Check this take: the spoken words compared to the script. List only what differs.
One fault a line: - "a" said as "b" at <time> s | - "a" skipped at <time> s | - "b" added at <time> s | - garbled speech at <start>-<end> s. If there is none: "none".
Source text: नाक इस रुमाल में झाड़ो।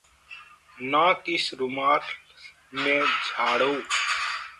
none